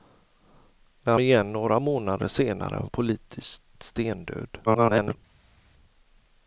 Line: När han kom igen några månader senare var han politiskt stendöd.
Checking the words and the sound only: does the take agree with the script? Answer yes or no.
no